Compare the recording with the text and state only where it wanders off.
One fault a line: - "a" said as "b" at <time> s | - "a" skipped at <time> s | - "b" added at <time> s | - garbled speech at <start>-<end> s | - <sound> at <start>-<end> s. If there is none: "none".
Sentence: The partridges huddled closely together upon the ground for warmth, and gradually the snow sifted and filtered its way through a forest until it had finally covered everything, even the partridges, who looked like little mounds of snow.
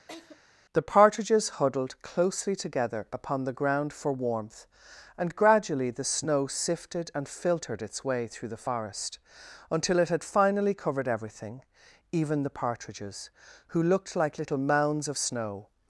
- laugh at 0.1-0.4 s
- "a" said as "the" at 8.5 s